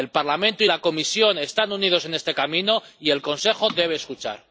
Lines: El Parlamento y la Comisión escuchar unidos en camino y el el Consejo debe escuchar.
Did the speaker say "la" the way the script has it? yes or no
yes